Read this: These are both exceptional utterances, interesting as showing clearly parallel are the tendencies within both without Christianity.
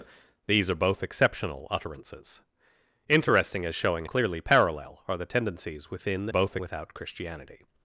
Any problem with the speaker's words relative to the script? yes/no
no